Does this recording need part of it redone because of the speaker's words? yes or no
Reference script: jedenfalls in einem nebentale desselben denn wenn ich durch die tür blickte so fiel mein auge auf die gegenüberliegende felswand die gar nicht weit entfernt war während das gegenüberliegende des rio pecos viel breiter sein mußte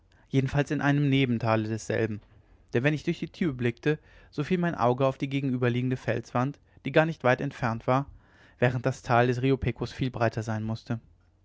yes